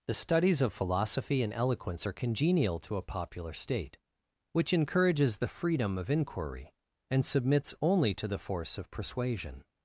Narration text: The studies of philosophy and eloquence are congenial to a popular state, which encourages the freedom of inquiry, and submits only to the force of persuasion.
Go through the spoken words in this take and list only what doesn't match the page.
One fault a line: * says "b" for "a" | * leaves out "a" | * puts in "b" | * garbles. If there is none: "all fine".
all fine